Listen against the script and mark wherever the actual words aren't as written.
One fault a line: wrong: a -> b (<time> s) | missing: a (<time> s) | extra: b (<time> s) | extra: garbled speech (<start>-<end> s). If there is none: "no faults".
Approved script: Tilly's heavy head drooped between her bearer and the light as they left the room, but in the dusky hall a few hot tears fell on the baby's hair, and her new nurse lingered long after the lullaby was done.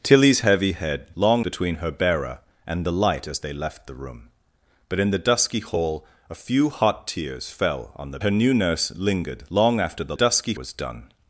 wrong: drooped -> long (1.1 s)
missing: baby's hair and (8.2 s)
wrong: lullaby -> dusky (10.1 s)